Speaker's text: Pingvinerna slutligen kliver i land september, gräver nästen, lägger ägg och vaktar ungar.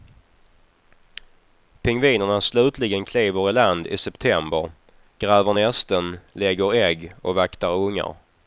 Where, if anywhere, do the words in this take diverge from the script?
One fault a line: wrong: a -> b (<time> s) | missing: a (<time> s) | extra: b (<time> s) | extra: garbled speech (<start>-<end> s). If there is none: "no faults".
extra: i (3.9 s)